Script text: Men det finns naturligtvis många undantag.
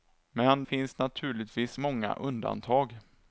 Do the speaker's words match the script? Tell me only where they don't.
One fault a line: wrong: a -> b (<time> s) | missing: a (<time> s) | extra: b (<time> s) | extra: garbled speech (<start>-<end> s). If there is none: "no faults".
missing: det (0.6 s)